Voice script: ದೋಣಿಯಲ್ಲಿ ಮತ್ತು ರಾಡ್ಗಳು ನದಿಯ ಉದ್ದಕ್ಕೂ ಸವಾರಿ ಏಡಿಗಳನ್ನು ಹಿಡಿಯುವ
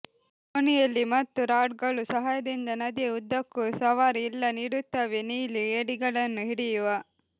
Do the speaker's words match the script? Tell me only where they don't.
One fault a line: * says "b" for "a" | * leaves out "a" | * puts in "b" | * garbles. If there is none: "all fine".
* puts in "ಸಹಾಯದಿಂದ"
* puts in "ಇಲ್ಲ ನೀಡುತ್ತವೆ ನೀಲಿ"